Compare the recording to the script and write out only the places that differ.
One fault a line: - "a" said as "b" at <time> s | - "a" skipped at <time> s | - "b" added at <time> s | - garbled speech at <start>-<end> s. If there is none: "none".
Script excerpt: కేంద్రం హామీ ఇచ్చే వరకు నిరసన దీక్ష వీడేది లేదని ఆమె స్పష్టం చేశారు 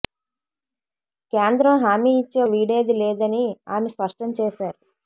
- "వరకు నిరసన దీక్ష" skipped at 2.4 s